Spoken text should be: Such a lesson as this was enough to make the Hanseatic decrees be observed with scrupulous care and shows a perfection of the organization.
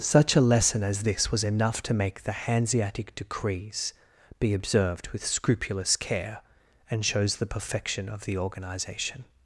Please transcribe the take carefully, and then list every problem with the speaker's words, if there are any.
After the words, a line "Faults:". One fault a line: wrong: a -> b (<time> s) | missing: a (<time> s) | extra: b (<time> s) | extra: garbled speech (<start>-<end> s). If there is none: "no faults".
Such a lesson as this was enough to make the Hanseatic decrees be observed with scrupulous care and shows the perfection of the organization.
Faults:
wrong: a -> the (7.3 s)